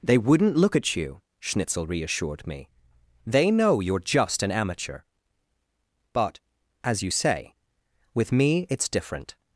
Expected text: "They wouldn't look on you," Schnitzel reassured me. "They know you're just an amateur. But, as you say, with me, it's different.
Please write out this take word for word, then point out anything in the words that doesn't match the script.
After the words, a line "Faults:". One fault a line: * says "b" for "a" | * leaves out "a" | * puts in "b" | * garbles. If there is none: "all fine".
"They wouldn't look at you," Schnitzel reassured me. "They know you're just an amateur. But, as you say, with me, it's different.
Faults:
* says "at" for "on"